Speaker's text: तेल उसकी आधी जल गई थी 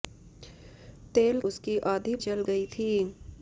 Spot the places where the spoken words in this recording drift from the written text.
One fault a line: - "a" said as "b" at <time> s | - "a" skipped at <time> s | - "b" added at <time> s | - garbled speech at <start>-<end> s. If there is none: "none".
none